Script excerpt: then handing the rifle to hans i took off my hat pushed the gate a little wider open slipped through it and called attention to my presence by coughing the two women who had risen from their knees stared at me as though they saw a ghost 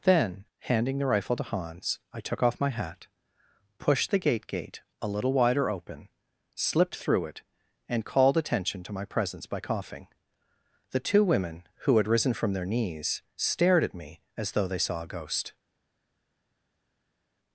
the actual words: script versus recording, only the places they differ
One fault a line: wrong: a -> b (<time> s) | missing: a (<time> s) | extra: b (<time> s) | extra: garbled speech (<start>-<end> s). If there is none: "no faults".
extra: gate (4.5 s)